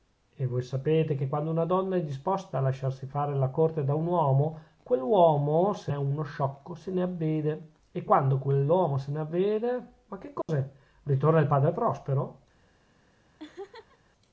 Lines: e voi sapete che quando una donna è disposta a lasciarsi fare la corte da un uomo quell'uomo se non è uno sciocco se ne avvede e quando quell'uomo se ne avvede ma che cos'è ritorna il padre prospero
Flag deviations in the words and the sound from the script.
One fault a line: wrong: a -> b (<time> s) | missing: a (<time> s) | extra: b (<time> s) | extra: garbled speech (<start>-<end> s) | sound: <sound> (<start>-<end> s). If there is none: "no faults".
missing: non (5.9 s)
sound: dropout (10.4-10.5 s)
sound: laugh (13.4-14.0 s)